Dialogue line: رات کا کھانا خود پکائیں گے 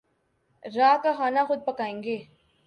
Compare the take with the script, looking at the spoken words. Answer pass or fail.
pass